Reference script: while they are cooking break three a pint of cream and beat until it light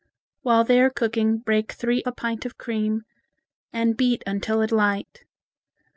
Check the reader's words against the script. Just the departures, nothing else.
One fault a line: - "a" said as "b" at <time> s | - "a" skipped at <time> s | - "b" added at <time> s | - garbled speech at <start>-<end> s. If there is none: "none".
none